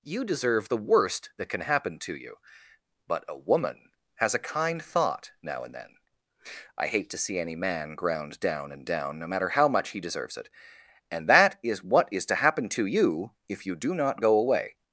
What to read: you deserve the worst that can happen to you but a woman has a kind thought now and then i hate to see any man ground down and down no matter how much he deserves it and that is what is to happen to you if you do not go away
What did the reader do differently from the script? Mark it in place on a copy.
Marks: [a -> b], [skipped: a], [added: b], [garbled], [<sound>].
you deserve the worst that can happen to you but a woman has a kind thought now and then i hate to see any man ground down and down no matter how much he deserves it and that is what is to happen to you if you do not go away